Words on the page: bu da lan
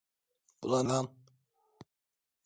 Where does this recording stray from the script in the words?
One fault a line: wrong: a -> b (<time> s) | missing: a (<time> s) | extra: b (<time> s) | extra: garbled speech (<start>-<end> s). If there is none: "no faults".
no faults